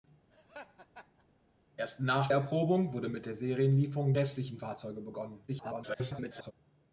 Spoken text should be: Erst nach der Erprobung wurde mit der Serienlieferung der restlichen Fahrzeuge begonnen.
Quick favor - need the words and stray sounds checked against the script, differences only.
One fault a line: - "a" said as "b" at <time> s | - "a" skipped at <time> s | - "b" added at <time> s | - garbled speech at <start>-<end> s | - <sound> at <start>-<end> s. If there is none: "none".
- laugh at 0.3-1.3 s
- "der" skipped at 2.3 s
- "der" skipped at 4.1 s
- garbled speech at 5.5-6.5 s